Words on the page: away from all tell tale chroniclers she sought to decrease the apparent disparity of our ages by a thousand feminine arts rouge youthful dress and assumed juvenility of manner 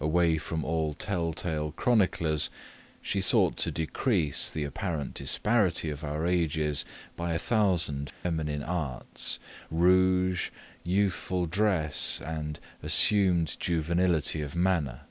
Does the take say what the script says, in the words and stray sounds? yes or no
no